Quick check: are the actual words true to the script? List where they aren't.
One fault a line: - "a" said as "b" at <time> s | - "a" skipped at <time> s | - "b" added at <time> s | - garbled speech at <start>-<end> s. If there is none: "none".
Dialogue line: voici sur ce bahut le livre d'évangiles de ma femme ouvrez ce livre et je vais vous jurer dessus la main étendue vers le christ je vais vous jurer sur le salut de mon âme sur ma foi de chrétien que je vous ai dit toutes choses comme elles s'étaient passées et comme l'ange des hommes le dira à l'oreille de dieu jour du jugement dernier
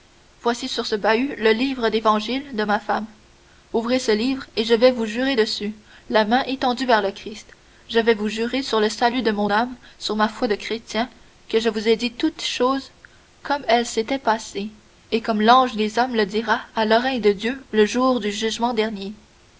- "le" added at 17.7 s